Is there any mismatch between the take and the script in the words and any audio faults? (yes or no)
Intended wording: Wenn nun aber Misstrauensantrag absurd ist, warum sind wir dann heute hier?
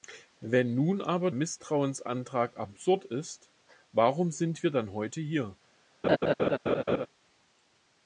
yes